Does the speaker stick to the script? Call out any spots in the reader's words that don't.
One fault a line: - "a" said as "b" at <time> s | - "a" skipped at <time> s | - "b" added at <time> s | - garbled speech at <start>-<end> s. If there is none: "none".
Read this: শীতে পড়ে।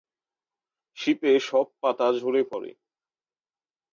- "সব পাতা ঝরে" added at 1.4 s